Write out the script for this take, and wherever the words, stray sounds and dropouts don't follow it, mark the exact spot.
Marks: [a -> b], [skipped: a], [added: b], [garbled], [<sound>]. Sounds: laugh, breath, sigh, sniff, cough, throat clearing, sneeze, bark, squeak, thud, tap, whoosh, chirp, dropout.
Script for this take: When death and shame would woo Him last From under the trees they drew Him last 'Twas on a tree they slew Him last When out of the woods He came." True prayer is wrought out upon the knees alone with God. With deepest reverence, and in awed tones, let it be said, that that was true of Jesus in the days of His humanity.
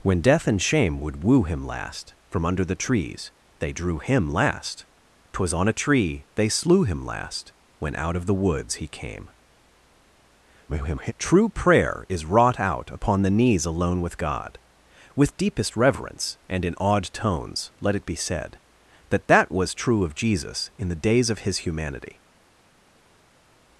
When death and shame would woo Him last From under the trees they drew Him last 'Twas on a tree they slew Him last When out of the woods He came." [garbled] True prayer is wrought out upon the knees alone with God. With deepest reverence, and in awed tones, let it be said, that that was true of Jesus in the days of His humanity.